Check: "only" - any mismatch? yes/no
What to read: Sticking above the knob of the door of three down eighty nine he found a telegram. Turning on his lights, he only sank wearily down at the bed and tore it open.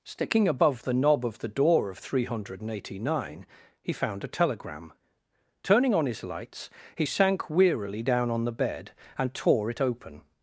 yes